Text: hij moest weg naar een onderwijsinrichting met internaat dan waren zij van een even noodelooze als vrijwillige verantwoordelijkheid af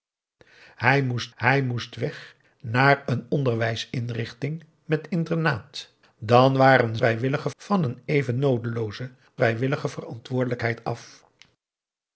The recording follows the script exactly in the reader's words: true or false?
false